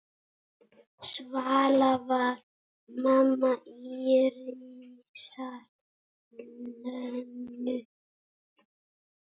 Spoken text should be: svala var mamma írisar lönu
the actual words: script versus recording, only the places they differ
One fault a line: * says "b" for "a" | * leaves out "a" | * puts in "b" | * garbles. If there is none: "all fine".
all fine